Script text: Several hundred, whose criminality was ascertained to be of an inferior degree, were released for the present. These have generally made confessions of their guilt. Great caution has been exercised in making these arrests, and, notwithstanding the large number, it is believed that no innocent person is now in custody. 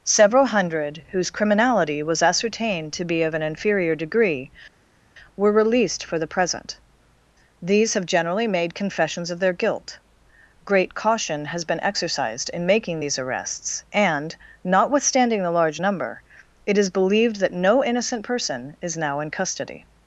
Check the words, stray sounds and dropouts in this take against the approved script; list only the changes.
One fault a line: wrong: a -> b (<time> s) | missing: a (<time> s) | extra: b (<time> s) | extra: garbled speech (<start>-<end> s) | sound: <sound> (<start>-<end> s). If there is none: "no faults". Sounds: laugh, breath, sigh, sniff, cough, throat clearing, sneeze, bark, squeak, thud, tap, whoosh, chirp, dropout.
no faults